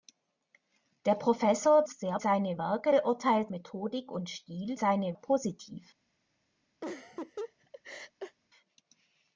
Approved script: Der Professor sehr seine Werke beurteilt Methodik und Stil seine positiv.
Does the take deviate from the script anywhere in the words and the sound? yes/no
yes